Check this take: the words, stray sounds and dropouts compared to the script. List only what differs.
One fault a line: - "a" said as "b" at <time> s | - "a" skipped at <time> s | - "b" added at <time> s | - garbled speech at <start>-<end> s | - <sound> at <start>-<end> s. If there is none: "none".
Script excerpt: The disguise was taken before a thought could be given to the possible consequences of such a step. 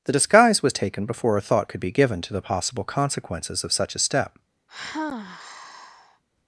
- sigh at 4.7-6.2 s